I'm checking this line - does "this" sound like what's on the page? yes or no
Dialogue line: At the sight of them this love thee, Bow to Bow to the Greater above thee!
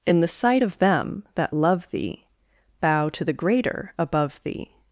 no